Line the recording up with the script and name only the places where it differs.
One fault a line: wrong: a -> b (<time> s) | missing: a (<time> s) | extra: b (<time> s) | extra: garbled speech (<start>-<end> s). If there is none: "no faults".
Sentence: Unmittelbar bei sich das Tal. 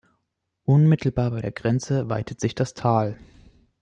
extra: der Grenze weitet (1.4 s)